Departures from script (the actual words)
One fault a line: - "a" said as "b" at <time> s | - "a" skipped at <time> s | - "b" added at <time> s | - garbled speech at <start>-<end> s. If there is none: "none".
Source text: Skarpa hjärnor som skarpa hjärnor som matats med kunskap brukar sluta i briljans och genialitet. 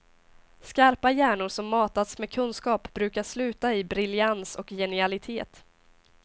- "skarpa hjärnor som" skipped at 1.7 s